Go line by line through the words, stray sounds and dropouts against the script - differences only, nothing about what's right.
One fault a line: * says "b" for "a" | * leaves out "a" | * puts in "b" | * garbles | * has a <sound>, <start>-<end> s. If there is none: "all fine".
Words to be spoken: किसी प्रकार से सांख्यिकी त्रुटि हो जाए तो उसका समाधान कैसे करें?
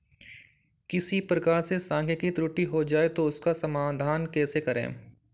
all fine